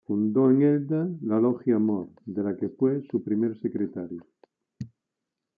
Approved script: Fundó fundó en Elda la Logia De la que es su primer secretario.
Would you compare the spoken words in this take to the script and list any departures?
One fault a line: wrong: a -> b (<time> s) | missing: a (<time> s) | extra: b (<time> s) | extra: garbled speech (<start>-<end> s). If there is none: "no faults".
missing: fundó (0.5 s)
extra: Amor (1.8 s)
wrong: es -> fue (2.7 s)